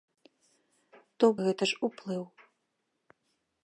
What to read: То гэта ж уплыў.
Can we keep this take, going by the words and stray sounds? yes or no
yes